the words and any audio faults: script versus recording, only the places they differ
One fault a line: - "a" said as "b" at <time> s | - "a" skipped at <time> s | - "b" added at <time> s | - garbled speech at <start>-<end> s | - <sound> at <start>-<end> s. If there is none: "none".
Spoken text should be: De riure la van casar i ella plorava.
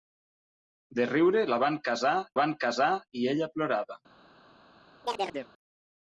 - "van casar" added at 2.4 s
- chirp at 5.0-5.5 s